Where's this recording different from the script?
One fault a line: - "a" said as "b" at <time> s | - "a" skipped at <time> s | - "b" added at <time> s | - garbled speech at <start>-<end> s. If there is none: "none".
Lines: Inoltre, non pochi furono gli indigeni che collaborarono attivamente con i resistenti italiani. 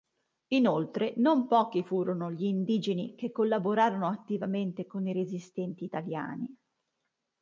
none